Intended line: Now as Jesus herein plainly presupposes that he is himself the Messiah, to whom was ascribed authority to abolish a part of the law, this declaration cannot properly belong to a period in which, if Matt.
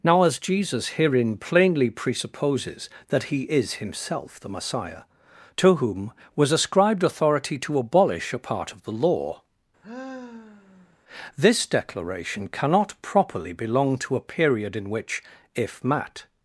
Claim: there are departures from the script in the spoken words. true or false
false